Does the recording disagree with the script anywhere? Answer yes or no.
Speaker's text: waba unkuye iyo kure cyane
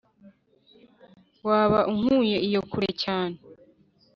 no